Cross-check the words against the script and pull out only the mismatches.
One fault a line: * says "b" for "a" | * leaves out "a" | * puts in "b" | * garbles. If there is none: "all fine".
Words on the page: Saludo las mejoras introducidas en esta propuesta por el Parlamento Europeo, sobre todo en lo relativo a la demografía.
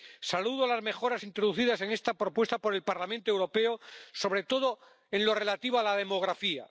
all fine